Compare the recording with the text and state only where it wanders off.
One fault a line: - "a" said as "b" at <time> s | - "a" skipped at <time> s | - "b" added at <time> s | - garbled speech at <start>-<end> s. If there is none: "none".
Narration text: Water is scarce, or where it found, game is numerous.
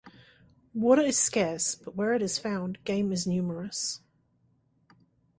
- "or" said as "but" at 1.8 s
- "is" added at 2.2 s